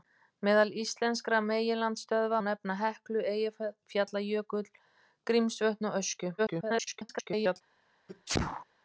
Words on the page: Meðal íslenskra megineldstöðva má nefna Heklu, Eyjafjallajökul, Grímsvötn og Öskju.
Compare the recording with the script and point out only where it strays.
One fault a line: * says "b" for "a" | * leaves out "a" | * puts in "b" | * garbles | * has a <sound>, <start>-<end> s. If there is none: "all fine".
* leaves out "má"
* garbles
* has a sneeze, 8.1-8.6 s